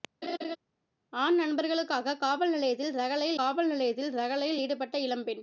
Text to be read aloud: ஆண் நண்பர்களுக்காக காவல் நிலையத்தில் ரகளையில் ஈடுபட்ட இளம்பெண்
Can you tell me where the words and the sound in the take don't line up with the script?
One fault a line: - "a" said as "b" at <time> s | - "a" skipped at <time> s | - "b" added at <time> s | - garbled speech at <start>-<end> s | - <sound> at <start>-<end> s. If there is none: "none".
- laugh at 0.2-0.6 s
- "காவல் நிலையத்தில் ரகளையில்" added at 3.3 s